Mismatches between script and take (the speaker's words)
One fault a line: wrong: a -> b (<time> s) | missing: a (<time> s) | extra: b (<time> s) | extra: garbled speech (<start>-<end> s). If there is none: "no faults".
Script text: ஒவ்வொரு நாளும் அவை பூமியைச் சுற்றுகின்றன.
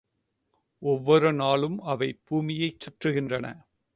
no faults